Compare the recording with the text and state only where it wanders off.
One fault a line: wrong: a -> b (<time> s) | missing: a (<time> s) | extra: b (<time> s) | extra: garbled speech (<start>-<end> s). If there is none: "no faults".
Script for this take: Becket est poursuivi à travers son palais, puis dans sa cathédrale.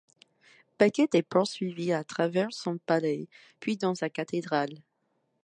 no faults